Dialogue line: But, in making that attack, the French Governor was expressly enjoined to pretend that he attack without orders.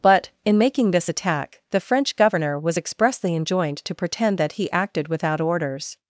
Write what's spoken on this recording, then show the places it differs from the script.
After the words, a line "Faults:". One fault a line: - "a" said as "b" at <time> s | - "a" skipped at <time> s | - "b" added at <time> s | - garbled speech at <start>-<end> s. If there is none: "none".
But, in making this attack, the French Governor was expressly enjoined to pretend that he acted without orders.
Faults:
- "that" said as "this" at 0.9 s
- "attack" said as "acted" at 4.7 s